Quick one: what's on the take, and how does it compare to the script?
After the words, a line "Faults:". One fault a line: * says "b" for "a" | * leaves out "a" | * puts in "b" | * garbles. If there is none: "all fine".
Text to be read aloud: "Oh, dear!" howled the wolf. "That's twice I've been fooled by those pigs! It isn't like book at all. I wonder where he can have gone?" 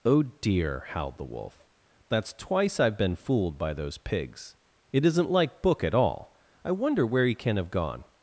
"Oh, dear!" howled the wolf. "That's twice I've been fooled by those pigs! It isn't like book at all. I wonder where he can have gone?"
Faults:
all fine